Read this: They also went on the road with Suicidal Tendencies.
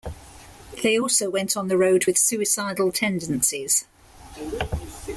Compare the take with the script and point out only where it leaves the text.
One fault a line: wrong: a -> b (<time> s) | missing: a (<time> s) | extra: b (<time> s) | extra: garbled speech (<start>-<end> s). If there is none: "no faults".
no faults